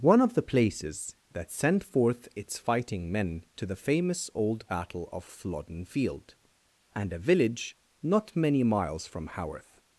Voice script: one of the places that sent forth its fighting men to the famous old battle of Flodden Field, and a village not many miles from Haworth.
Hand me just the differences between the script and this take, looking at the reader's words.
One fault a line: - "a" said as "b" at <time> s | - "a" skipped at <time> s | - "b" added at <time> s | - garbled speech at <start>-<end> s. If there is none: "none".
none